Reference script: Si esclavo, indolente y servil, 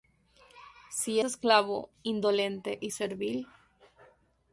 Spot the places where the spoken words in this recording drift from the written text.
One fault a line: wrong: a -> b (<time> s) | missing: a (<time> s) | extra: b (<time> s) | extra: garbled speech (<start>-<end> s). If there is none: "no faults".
no faults